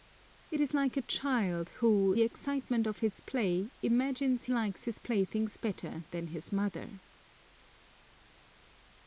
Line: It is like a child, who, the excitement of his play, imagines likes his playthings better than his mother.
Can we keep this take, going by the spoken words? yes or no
yes